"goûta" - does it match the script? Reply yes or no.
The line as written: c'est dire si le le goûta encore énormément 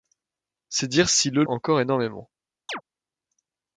no